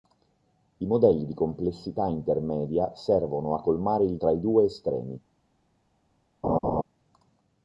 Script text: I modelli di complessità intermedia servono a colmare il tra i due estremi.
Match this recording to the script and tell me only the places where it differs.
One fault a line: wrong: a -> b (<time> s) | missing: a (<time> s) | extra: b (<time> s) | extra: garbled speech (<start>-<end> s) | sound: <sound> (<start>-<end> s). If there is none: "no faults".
sound: laugh (6.4-6.8 s)